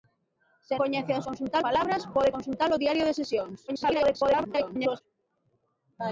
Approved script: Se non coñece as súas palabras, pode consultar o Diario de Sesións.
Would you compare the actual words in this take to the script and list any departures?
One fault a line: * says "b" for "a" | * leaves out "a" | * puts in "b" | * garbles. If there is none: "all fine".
* leaves out "non"
* says "consultar" for "súas"
* garbles